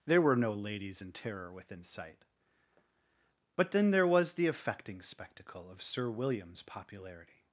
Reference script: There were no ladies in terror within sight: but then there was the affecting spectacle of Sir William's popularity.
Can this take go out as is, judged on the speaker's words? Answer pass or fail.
pass